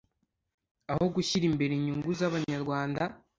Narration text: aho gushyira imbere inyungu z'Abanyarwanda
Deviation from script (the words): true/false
false